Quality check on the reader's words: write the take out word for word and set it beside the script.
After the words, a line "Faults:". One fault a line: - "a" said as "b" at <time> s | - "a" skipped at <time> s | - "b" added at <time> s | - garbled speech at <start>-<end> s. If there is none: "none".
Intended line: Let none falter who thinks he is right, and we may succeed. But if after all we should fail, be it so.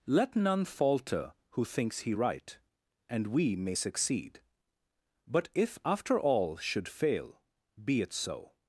Let none falter who thinks he right, and we may succeed. But if after all should fail, be it so.
Faults:
- "is" skipped at 2.1 s
- "we" skipped at 6.6 s